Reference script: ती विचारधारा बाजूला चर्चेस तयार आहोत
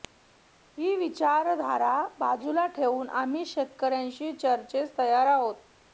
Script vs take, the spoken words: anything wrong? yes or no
yes